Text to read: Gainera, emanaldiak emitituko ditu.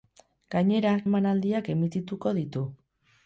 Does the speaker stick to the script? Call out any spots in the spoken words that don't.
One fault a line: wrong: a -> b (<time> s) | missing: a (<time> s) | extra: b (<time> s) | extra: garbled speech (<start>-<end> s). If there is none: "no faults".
no faults